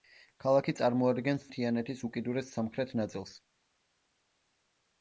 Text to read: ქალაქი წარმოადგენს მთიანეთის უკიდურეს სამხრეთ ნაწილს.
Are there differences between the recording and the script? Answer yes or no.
no